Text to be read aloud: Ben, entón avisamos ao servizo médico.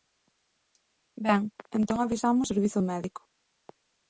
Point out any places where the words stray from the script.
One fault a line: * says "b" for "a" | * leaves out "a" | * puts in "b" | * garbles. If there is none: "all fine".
* leaves out "ao"